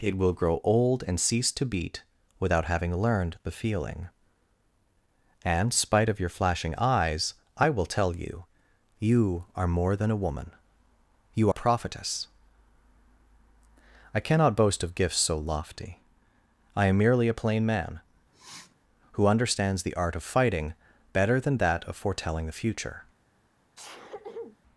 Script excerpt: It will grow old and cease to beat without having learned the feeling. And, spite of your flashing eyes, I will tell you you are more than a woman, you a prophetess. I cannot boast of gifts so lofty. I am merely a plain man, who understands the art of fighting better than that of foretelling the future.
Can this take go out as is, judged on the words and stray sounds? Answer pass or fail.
fail